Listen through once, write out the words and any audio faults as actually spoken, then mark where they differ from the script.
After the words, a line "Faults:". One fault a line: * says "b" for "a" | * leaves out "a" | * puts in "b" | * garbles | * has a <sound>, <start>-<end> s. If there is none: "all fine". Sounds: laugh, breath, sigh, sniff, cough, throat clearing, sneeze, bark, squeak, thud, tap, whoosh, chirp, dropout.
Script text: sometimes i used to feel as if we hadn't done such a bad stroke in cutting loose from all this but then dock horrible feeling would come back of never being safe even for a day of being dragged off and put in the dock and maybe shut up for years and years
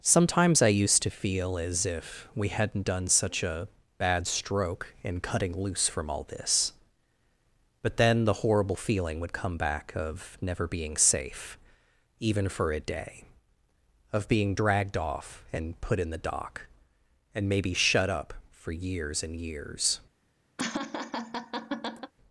sometimes i used to feel as if we hadn't done such a bad stroke in cutting loose from all this but then the horrible feeling would come back of never being safe even for a day of being dragged off and put in the dock and maybe shut up for years and years
Faults:
* says "the" for "dock"
* has a laugh, 20.6-22.1 s